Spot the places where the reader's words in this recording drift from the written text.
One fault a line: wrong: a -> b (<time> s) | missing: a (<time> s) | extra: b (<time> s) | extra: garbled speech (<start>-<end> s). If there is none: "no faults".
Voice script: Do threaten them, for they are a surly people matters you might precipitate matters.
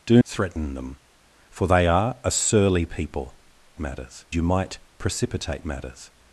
no faults